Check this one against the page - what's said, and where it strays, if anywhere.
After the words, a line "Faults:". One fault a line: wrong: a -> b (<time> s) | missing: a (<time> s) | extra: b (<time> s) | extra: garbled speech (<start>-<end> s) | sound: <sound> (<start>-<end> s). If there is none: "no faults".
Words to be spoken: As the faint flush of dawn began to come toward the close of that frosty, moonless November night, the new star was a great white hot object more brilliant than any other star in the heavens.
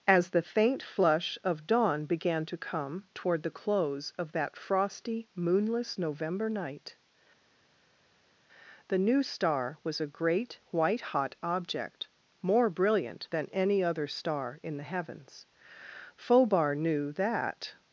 As the faint flush of dawn began to come toward the close of that frosty, moonless November night, the new star was a great white hot object more brilliant than any other star in the heavens. Phobar knew that
Faults:
extra: Phobar knew that (16.2 s)